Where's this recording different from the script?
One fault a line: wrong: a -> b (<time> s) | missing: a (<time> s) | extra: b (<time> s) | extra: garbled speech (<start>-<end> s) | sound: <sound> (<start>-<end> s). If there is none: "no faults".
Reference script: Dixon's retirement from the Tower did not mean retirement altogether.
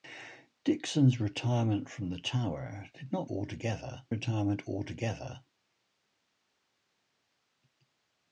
wrong: mean -> altogether (3.3 s)